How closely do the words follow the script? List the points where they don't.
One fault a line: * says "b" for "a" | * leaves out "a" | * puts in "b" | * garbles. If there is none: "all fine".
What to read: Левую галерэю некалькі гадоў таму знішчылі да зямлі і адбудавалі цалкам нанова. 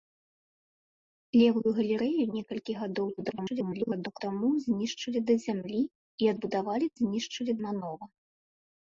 * garbles
* says "знішчылі" for "цалкам"